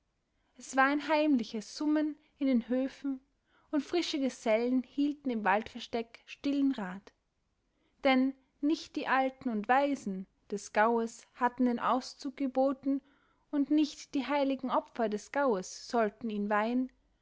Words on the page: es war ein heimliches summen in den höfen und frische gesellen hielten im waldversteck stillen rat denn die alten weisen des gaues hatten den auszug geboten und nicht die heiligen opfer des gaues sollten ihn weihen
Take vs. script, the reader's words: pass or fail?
fail